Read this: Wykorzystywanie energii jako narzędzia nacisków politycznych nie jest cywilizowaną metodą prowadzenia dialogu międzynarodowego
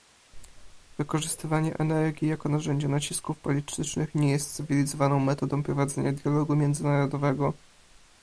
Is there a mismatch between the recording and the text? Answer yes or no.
no